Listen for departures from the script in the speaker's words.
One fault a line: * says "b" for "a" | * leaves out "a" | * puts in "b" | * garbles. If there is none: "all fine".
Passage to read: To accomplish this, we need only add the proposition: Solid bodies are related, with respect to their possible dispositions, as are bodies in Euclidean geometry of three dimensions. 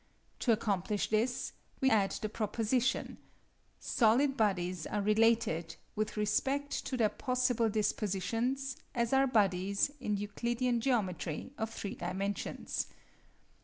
* leaves out "need only"